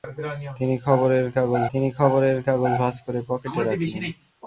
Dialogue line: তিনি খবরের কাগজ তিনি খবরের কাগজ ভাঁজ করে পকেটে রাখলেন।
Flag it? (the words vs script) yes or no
no